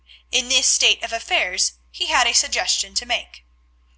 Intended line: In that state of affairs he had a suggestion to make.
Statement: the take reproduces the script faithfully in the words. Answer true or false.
false